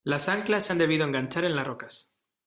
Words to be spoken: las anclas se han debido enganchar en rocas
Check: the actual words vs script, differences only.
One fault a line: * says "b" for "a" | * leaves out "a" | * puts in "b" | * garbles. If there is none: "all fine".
* puts in "las"